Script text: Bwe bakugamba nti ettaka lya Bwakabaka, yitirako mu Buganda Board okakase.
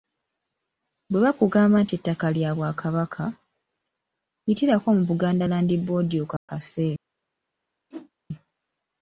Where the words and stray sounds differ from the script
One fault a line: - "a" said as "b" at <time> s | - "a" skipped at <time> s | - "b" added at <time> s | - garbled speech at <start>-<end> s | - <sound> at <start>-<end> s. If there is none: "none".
- "Land" added at 5.5 s
- dropout at 6.4-6.5 s
- whoosh at 7.9-8.1 s